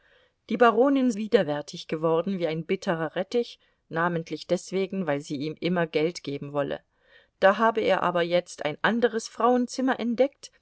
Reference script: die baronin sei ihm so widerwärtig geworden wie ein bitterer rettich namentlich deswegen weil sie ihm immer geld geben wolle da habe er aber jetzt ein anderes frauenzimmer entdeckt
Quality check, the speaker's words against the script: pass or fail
fail